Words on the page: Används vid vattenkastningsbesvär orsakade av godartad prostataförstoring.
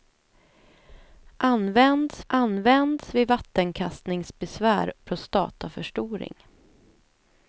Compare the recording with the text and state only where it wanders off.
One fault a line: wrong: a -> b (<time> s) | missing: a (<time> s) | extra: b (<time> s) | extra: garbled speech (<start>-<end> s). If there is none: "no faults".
extra: används (2.3 s)
missing: orsakade av godartad (4.9 s)